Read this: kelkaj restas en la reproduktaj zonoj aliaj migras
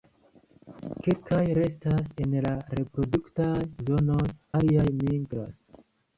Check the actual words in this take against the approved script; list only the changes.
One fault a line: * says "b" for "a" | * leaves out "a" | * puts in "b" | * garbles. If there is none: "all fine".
all fine